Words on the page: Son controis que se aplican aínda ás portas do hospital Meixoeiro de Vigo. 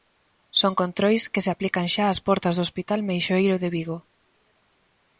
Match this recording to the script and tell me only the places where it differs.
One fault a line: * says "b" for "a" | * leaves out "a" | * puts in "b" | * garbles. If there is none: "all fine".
* says "xa" for "aínda"